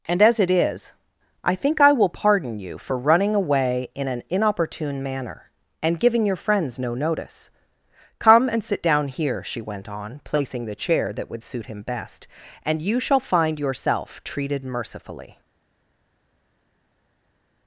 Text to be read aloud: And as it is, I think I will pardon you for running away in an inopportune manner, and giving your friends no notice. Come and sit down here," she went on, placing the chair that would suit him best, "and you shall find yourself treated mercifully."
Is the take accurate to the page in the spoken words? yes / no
yes